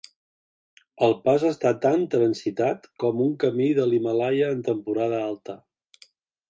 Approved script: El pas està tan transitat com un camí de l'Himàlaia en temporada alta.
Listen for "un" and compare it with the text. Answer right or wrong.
right